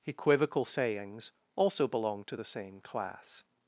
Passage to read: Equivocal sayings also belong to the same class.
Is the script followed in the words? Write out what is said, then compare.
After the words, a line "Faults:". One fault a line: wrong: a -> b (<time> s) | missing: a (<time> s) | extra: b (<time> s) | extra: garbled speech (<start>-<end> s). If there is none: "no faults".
Equivocal sayings also belong to the same class.
Faults:
no faults